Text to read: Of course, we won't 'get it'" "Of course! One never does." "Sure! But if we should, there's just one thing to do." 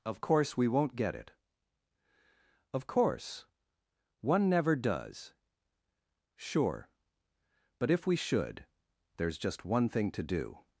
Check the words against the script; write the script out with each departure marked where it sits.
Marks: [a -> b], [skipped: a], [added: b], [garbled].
Of course, we won't 'get it'" "Of course! One never does." "Sure! But if we should, there's just one thing to do."